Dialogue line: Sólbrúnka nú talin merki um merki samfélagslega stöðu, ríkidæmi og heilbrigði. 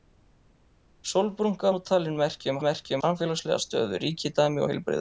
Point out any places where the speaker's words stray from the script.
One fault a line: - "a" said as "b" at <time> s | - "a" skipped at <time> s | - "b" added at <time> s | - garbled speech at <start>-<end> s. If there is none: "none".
none